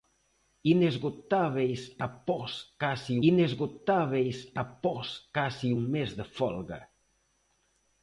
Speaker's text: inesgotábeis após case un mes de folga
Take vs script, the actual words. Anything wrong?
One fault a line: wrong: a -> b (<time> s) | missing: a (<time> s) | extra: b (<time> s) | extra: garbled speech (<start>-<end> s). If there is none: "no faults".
extra: inesgotábeis após case (3.3 s)